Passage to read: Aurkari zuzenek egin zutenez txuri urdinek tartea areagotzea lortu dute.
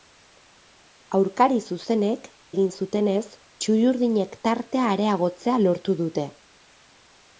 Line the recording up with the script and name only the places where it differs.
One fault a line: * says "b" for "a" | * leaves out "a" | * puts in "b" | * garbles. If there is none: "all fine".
all fine